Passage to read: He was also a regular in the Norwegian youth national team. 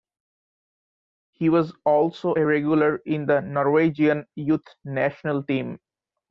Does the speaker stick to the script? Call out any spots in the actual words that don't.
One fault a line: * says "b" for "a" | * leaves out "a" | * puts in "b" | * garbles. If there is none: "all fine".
all fine